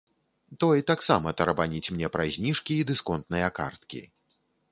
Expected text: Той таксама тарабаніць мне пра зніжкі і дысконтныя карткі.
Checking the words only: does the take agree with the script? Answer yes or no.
yes